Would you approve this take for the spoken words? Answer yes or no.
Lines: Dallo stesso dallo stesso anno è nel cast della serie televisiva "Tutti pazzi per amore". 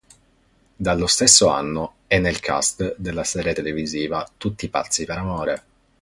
no